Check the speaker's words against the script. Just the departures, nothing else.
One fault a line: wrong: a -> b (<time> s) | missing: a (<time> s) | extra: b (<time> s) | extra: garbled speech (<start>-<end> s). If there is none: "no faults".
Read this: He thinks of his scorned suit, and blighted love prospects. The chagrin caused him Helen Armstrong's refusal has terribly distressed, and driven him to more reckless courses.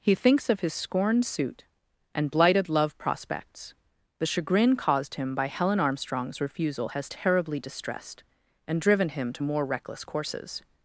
extra: by (5.3 s)